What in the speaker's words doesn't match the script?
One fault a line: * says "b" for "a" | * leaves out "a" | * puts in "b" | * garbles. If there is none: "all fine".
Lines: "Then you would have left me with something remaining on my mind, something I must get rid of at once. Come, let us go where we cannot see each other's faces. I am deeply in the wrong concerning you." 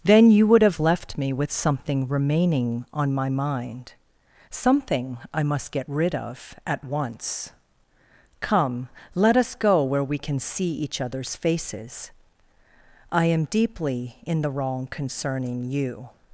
* says "can" for "cannot"